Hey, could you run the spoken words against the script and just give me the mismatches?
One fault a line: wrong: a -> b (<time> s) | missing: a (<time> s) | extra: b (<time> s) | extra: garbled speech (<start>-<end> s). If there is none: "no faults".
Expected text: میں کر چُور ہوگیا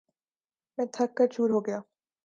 extra: تھک (0.9 s)